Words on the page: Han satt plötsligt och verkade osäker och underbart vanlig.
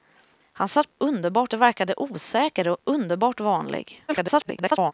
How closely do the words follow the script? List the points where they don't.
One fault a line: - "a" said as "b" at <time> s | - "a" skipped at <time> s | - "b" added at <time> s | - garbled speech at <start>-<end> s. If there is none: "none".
- "plötsligt" said as "underbart" at 1.0 s
- garbled speech at 4.1-4.9 s